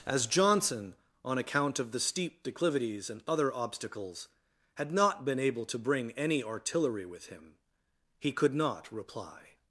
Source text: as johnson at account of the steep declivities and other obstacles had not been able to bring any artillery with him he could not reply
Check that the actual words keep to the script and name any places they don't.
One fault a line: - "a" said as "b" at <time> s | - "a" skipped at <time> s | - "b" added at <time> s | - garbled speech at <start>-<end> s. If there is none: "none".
- "at" said as "on" at 1.2 s